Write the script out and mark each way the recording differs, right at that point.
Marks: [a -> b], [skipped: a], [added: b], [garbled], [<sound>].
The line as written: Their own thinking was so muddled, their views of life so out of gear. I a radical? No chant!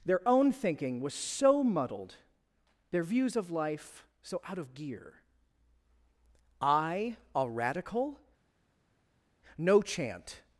Their own thinking was so muddled, their views of life so out of gear. I a radical? No chant!